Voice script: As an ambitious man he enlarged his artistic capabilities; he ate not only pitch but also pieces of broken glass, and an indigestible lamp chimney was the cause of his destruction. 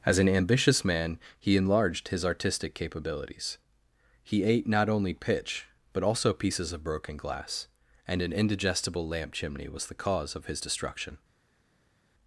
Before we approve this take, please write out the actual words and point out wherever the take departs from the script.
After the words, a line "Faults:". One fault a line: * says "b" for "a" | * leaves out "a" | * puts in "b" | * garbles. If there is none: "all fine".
As an ambitious man he enlarged his artistic capabilities; he ate not only pitch but also pieces of broken glass, and an indigestible lamp chimney was the cause of his destruction.
Faults:
all fine